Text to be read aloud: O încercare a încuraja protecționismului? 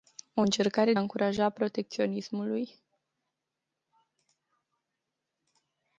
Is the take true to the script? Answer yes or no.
yes